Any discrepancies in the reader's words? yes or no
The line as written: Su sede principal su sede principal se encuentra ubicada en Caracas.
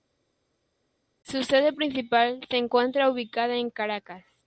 yes